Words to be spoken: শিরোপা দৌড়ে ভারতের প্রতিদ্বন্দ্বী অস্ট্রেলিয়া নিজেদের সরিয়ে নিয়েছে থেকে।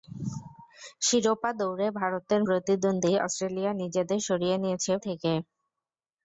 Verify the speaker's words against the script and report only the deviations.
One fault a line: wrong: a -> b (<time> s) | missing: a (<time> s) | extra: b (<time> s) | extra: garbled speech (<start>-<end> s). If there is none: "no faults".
no faults